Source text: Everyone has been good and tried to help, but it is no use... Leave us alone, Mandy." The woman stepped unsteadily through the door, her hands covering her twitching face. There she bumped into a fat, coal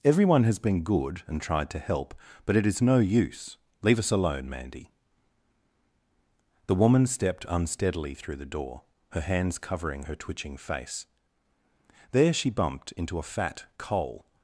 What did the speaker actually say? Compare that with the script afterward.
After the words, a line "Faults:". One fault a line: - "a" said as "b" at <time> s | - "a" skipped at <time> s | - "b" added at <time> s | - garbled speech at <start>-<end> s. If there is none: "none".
Everyone has been good and tried to help, but it is no use... Leave us alone, Mandy." The woman stepped unsteadily through the door, her hands covering her twitching face. There she bumped into a fat, coal
Faults:
none